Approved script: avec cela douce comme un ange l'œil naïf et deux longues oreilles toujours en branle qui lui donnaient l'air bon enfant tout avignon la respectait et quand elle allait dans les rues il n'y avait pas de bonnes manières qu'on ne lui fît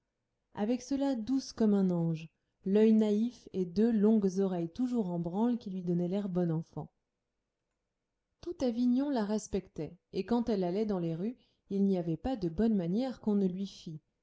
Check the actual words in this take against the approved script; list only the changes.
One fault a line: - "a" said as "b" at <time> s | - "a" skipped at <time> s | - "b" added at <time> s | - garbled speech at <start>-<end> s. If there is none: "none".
none